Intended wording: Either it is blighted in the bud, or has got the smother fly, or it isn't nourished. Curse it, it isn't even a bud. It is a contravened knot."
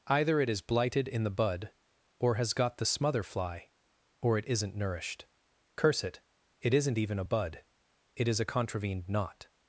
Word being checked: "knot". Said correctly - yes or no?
yes